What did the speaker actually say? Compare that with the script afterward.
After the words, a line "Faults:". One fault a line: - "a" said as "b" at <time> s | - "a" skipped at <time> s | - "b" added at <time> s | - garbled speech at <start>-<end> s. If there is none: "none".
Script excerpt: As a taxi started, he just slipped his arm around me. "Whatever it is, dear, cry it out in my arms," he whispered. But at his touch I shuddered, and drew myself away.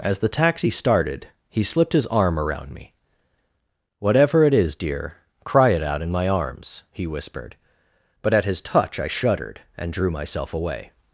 As the taxi started, he slipped his arm around me. "Whatever it is, dear, cry it out in my arms," he whispered. But at his touch I shuddered, and drew myself away.
Faults:
- "a" said as "the" at 0.2 s
- "just" skipped at 1.6 s